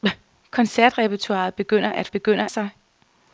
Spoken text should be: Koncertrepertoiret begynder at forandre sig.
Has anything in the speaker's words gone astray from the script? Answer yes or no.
yes